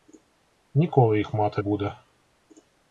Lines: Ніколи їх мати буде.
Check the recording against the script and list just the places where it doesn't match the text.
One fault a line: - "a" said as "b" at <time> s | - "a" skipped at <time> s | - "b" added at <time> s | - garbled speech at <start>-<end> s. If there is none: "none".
none